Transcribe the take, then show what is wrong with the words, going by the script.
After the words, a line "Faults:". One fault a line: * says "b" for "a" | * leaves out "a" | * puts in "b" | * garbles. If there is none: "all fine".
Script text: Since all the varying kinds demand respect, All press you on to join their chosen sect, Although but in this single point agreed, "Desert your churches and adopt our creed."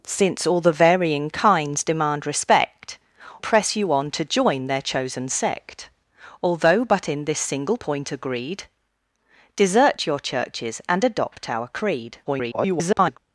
Since all the varying kinds demand respect, Press you on to join their chosen sect, Although but in this single point agreed, "Desert your churches and adopt our creed." [garbled]
Faults:
* leaves out "All"
* garbles